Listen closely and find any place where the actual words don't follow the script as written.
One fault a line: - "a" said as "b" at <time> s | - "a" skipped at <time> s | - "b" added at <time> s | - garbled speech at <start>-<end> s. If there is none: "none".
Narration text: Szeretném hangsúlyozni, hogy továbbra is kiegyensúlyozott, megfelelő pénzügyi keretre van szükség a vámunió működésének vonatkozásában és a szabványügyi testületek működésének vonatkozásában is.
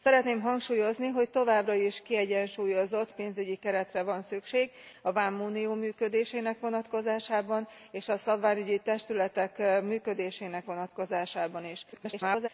- "megfelelő" skipped at 3.1 s
- garbled speech at 11.9-12.5 s